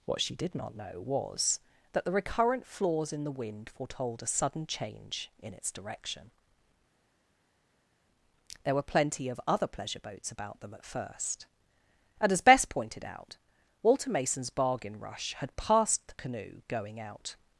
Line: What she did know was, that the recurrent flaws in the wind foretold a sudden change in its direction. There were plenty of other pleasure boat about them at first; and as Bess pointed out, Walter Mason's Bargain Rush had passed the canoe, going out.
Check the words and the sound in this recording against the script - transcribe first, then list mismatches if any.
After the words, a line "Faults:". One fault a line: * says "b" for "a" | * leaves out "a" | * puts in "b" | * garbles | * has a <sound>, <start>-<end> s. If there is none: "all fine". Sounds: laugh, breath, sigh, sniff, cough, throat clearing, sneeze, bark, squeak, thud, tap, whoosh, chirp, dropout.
What she did not know was, that the recurrent flaws in the wind foretold a sudden change in its direction. There were plenty of other pleasure boats about them at first; and as Bess pointed out, Walter Mason's Bargain Rush had passed the canoe, going out.
Faults:
* puts in "not"
* says "boats" for "boat"